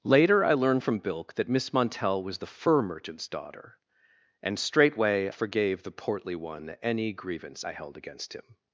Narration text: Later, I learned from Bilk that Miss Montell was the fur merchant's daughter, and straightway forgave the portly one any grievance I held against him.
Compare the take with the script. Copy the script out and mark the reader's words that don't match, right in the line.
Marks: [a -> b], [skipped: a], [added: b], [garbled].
Later, I learned from Bilk that Miss Montell was the fur merchant's daughter, and straightway forgave the portly one any grievance I held against him.